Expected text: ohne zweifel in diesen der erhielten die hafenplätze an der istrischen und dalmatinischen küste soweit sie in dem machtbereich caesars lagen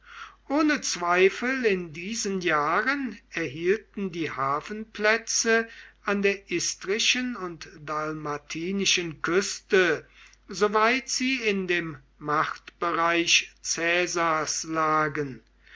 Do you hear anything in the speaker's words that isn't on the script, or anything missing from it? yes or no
yes